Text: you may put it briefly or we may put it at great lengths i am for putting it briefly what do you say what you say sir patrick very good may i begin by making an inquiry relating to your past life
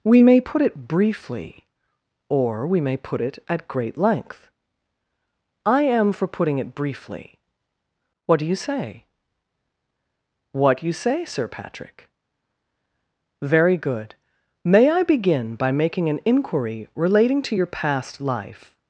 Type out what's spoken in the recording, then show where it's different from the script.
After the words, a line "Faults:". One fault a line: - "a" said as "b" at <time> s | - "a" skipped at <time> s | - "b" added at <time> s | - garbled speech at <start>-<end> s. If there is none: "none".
we may put it briefly or we may put it at great length i am for putting it briefly what do you say what you say sir patrick very good may i begin by making an inquiry relating to your past life
Faults:
- "you" said as "we" at 0.0 s
- "lengths" said as "length" at 4.0 s